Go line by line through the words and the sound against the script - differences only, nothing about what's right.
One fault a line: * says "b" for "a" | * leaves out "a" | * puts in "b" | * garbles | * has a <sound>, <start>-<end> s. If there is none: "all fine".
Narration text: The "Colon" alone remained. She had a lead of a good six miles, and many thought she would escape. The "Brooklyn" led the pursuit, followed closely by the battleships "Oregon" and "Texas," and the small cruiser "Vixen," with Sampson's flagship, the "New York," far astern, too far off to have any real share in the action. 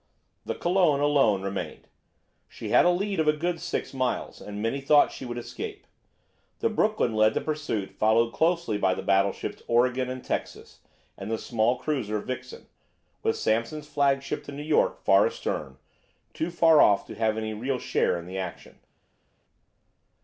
all fine